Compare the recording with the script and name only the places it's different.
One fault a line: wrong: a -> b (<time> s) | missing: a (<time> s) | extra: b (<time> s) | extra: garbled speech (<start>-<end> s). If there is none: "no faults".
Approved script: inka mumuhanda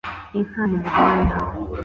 no faults